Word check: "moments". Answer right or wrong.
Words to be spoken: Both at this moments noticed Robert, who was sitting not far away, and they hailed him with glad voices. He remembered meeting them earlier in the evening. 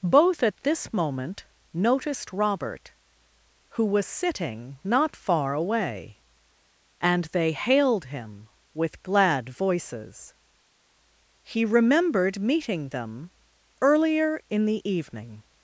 wrong